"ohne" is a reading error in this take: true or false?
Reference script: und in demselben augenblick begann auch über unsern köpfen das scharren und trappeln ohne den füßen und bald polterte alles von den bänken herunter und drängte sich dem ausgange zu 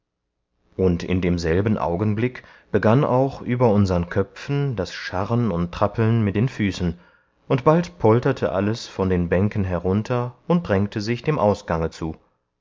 true